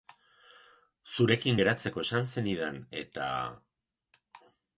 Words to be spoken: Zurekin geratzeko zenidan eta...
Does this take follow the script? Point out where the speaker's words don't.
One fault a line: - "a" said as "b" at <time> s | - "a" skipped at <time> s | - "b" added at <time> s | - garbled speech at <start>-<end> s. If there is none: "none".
- "esan" added at 2.0 s